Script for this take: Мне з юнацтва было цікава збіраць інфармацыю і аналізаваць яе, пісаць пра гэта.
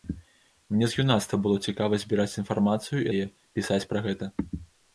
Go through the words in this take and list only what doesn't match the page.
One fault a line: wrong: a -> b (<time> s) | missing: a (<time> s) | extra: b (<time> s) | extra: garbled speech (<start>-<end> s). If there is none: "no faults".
missing: аналізаваць (3.1 s)